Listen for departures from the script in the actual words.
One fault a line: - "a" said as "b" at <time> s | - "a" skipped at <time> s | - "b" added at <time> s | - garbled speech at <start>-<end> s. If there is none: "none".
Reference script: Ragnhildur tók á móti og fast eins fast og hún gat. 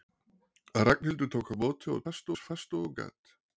none